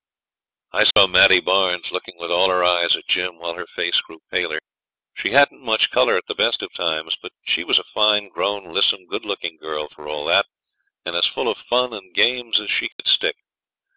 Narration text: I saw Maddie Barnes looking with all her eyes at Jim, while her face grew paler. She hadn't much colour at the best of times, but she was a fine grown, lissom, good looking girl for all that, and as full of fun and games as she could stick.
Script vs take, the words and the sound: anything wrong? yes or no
yes